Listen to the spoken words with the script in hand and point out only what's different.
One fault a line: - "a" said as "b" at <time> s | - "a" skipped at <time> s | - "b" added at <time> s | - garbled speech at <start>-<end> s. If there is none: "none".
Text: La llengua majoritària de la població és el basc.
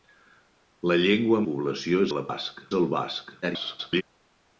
- "majoritària" said as "població" at 1.5 s
- "població" said as "basc" at 2.3 s
- garbled speech at 3.4-4.0 s